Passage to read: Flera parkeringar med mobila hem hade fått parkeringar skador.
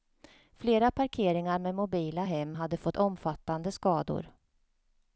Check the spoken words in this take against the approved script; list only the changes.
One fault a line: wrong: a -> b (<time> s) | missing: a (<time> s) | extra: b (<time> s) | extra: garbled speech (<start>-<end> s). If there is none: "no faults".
wrong: parkeringar -> omfattande (2.9 s)